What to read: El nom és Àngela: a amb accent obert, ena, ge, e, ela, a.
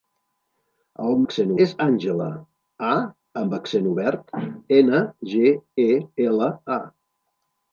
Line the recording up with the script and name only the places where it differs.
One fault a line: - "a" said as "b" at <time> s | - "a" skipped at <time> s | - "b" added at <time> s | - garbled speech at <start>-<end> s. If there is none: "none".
- "nom" said as "accent" at 1.2 s